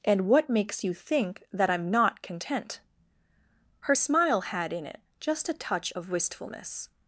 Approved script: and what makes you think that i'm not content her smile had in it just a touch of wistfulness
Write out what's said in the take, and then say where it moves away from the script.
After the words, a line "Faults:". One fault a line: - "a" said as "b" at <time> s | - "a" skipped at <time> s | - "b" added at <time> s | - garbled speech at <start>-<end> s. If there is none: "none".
and what makes you think that i'm not content her smile had in it just a touch of wistfulness
Faults:
none